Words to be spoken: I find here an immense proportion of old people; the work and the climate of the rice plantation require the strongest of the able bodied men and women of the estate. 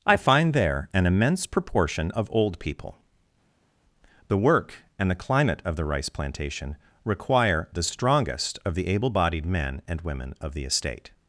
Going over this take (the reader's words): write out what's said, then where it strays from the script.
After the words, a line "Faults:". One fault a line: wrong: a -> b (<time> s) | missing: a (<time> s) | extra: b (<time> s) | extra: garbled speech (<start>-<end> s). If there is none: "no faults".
I find there an immense proportion of old people; the work and the climate of the rice plantation require the strongest of the able bodied men and women of the estate.
Faults:
wrong: here -> there (0.5 s)